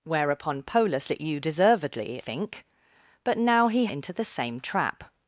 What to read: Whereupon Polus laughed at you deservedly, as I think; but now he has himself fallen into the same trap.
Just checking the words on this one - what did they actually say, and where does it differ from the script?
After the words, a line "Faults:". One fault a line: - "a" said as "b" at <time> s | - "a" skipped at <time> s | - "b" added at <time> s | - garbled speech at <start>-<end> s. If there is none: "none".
Whereupon Polus at you deservedly, think; but now he into the same trap.
Faults:
- "laughed" skipped at 1.1 s
- "as I" skipped at 2.2 s
- "has himself fallen" skipped at 3.9 s